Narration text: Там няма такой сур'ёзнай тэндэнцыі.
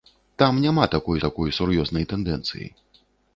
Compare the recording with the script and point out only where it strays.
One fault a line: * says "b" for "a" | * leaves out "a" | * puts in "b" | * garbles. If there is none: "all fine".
* puts in "такой"